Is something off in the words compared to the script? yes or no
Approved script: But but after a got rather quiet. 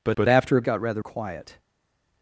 no